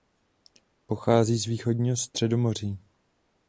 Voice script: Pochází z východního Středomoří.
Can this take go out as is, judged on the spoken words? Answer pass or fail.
pass